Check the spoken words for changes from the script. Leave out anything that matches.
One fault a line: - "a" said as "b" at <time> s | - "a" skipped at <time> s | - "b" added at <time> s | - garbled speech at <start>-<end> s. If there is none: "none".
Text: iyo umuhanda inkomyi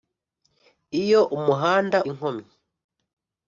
none